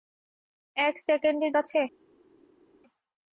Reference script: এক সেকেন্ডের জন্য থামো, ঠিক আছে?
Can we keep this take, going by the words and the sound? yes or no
no